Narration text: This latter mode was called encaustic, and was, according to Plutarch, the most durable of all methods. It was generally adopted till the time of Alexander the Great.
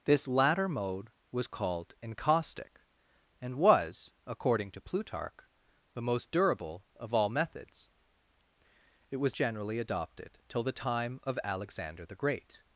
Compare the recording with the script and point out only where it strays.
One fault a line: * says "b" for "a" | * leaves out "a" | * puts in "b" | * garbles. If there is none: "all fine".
all fine